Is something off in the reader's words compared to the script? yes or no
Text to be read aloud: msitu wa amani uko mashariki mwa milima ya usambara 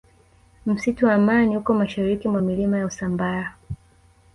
no